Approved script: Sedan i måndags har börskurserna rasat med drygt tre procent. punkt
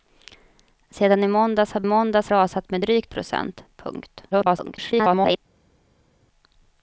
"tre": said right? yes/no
no